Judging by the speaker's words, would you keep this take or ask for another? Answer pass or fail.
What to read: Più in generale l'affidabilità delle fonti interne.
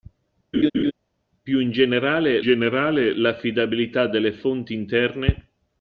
fail